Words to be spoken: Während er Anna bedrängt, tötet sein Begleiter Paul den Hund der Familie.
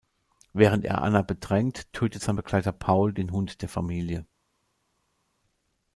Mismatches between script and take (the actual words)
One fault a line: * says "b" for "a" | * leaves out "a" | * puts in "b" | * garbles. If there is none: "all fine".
all fine